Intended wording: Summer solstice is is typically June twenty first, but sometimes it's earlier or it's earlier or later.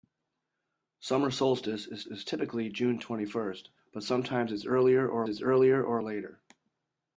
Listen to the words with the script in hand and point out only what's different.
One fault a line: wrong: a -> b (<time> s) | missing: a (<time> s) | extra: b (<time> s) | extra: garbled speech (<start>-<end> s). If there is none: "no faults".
no faults